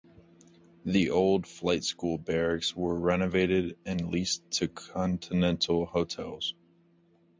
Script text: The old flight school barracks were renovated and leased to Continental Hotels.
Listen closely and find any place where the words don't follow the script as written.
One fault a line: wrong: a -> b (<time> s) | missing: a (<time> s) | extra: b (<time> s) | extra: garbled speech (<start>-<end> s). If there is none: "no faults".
no faults